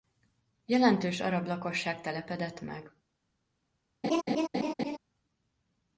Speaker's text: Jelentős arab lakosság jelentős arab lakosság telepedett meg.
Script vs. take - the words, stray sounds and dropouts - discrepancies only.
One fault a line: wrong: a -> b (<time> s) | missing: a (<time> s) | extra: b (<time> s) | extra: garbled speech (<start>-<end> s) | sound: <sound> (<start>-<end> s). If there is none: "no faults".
missing: jelentős arab lakosság (2.0 s)
sound: laugh (4.0-5.0 s)